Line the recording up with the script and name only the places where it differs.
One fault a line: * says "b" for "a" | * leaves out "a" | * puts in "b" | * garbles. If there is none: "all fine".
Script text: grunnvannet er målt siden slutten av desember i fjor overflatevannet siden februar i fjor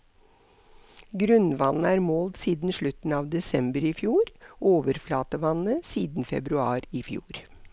all fine